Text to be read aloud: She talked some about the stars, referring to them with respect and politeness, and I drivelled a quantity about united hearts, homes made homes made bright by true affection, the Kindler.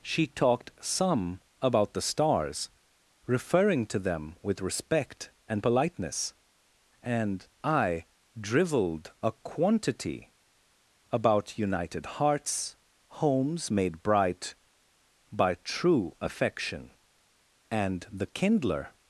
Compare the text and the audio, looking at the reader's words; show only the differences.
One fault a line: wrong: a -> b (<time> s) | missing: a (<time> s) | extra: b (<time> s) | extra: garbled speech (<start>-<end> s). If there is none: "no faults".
missing: homes made (14.0 s)
extra: and (17.7 s)